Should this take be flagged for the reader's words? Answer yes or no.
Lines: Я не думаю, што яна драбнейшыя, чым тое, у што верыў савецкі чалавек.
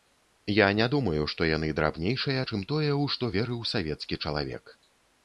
yes